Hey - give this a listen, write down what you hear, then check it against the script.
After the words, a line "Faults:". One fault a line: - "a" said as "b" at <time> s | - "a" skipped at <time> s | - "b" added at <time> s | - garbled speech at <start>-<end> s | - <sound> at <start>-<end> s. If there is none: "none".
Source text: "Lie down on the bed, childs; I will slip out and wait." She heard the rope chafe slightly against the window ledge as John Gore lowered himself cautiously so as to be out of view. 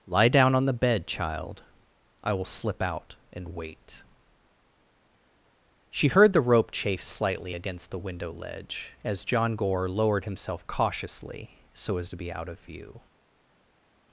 "Lie down on the bed, child; I will slip out and wait." She heard the rope chafe slightly against the window ledge as John Gore lowered himself cautiously so as to be out of view.
Faults:
- "childs" said as "child" at 1.1 s